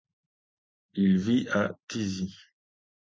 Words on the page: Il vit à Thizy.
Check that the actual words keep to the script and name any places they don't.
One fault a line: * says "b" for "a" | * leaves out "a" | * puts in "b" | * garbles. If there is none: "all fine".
all fine